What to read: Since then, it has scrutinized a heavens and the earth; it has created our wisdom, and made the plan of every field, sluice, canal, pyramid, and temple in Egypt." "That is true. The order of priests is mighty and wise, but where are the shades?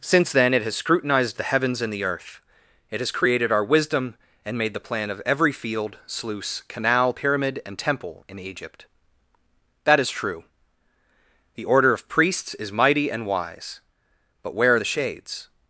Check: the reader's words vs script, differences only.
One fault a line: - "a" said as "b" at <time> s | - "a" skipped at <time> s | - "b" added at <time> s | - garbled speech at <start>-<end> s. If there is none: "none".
- "a" said as "the" at 1.4 s